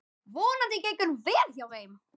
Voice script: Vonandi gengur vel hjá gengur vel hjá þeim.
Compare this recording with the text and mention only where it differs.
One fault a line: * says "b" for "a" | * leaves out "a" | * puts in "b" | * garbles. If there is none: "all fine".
* leaves out "gengur vel hjá"